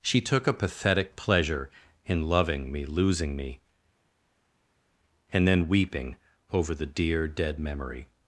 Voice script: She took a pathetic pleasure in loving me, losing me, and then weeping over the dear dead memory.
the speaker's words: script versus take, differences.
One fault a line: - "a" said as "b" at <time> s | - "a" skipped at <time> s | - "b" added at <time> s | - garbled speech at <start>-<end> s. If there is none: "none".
none